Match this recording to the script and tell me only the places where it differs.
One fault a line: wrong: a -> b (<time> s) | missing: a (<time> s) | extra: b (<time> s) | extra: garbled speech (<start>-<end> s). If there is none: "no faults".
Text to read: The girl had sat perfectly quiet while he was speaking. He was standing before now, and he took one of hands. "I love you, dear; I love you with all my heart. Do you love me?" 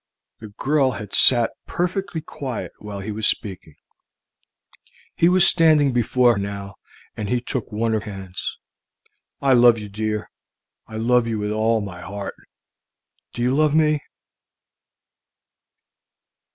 no faults